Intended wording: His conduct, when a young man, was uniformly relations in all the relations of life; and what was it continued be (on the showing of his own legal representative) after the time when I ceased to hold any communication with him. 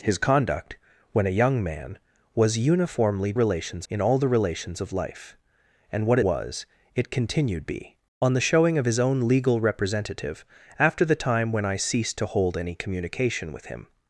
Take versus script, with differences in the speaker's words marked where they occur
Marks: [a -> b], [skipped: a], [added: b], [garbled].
His conduct, when a young man, was uniformly relations in all the relations of life; and what was it continued be (on the showing of his own legal representative) after the time when I ceased to hold any communication with him.